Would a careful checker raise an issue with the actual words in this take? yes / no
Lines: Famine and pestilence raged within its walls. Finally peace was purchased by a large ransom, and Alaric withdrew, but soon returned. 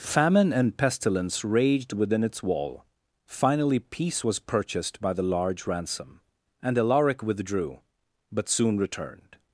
yes